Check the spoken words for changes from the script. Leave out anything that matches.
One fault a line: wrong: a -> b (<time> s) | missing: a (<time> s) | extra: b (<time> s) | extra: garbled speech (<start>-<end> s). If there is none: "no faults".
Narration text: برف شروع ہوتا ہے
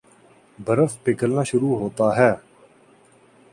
extra: پگھلنا (1.0 s)